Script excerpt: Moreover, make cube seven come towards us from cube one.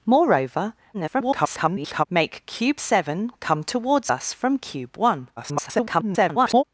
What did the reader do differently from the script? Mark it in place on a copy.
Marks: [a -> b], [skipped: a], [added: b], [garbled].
Moreover, [garbled] make cube seven come towards us from cube one. [garbled]